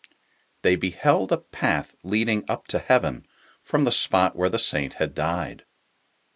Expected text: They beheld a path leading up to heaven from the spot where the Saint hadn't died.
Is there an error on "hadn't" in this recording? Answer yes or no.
yes